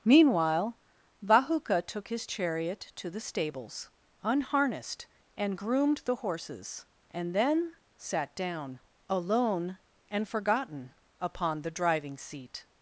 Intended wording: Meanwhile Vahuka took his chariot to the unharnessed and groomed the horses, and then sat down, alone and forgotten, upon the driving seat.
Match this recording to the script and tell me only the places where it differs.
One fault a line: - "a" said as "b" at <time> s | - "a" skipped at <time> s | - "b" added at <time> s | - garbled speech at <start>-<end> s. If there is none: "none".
- "stables" added at 3.2 s